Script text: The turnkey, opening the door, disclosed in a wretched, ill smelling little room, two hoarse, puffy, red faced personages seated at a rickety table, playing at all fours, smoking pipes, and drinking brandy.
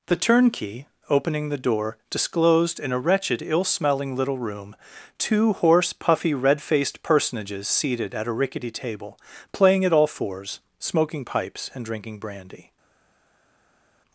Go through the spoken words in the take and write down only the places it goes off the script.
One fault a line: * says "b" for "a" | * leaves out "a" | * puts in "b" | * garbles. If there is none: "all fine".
all fine